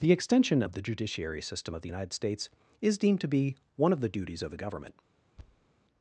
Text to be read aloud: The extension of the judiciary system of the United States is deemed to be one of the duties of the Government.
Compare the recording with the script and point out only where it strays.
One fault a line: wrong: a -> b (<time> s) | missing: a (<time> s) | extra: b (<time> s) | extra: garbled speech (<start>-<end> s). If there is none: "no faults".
no faults